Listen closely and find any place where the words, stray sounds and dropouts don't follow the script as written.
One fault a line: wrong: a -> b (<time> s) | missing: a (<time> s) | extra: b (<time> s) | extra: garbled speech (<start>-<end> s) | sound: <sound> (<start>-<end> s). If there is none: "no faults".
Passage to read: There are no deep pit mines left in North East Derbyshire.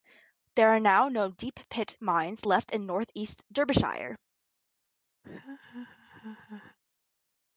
extra: now (0.8 s)
sound: laugh (5.2-6.8 s)